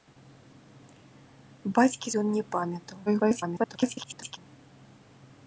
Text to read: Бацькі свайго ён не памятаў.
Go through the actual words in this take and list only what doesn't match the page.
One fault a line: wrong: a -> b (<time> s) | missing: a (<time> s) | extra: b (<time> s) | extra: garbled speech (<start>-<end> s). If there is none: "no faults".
missing: свайго (2.1 s)
extra: garbled speech (3.1-4.4 s)